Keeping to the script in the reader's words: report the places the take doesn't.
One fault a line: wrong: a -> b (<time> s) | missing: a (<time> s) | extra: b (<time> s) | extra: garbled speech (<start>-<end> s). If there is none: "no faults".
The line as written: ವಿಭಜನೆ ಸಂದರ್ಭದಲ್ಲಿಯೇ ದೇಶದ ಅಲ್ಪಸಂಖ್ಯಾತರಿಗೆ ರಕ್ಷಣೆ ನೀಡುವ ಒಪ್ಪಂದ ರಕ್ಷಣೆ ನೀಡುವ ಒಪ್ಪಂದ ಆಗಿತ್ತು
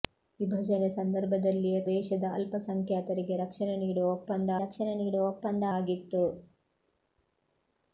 no faults